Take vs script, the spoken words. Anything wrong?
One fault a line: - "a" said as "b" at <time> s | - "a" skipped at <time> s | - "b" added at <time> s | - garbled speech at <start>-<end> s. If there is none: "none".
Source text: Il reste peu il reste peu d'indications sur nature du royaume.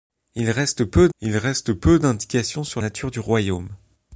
none